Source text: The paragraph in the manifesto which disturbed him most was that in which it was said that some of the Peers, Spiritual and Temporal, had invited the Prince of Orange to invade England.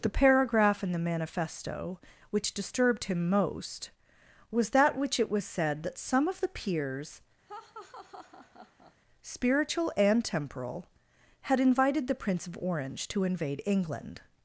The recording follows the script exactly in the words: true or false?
false